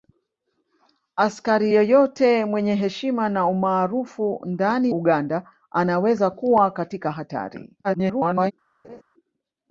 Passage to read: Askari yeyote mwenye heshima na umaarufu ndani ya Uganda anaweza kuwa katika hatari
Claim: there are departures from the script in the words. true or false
true